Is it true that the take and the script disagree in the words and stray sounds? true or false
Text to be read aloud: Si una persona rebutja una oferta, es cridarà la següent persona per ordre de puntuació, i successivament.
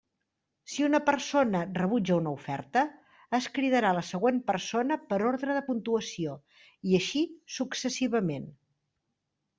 true